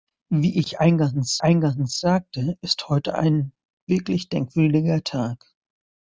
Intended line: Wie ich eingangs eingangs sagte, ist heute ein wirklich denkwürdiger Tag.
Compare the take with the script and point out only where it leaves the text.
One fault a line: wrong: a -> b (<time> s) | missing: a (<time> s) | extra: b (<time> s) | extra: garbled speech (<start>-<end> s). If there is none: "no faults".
no faults